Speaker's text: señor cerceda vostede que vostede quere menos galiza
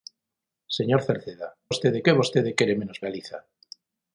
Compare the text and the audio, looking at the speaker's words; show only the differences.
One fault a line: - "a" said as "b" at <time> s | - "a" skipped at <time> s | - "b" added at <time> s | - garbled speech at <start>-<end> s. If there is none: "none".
none